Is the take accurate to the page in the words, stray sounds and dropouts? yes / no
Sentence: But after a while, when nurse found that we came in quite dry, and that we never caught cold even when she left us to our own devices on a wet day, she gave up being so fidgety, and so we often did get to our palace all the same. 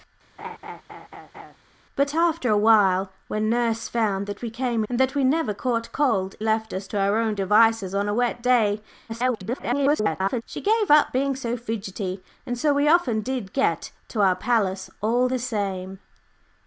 no